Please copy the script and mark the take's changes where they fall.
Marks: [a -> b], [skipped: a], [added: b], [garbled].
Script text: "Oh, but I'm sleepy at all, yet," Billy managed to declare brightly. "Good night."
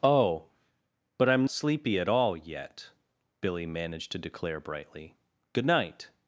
"Oh, but I'm sleepy at all, yet," Billy managed to declare brightly. "Good night."